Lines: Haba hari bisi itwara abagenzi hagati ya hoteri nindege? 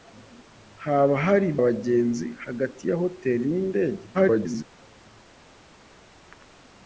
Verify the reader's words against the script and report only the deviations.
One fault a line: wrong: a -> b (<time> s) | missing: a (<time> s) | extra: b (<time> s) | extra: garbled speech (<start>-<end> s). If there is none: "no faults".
missing: bisi itwara (1.5 s)
extra: garbled speech (4.1-4.6 s)